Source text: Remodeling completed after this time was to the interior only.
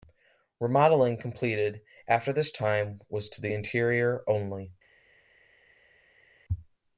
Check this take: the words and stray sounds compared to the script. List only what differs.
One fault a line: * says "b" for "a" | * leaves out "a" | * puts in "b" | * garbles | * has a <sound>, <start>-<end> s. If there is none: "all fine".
all fine